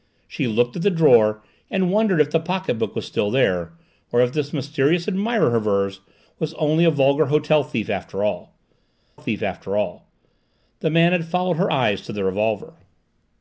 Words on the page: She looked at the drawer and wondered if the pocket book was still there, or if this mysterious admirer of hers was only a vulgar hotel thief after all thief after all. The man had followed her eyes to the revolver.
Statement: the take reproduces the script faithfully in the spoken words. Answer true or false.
true